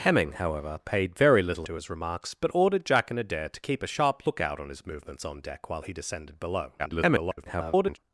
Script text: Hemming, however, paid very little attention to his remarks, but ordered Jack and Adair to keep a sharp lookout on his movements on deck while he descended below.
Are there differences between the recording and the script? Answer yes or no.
yes